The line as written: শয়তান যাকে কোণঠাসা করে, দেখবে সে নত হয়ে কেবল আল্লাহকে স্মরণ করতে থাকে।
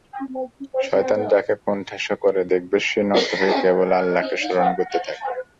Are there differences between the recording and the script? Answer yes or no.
no